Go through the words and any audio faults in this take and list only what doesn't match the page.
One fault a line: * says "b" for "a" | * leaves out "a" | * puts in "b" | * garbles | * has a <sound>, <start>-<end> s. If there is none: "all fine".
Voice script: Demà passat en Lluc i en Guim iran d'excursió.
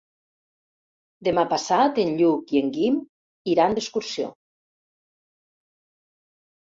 all fine